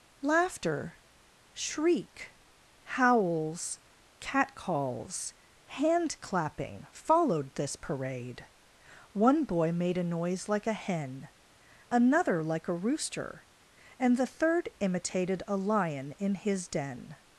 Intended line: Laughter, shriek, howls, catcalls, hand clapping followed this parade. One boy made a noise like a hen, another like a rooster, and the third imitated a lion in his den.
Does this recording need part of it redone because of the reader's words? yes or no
no